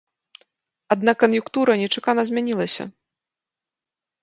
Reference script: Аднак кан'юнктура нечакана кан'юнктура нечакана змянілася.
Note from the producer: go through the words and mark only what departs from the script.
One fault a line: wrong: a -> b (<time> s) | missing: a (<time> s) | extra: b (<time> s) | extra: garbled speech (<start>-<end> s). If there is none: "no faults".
missing: кан'юнктура нечакана (2.2 s)